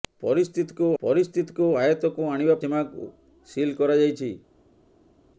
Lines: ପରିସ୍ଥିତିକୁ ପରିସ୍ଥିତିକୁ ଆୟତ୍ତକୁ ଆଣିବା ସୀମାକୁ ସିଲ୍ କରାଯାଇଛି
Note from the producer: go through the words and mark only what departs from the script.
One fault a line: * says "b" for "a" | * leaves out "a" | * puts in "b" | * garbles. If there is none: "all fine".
all fine